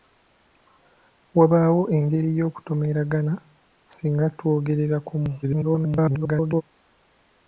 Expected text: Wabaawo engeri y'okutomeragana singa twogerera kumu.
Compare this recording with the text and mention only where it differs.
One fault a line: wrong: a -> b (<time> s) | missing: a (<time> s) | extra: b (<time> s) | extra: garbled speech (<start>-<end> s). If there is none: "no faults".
extra: garbled speech (5.4-6.6 s)